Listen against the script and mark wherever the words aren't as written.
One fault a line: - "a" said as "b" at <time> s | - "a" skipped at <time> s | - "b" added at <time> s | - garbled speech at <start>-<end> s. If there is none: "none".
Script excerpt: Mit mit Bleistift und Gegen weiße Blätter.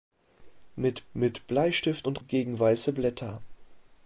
none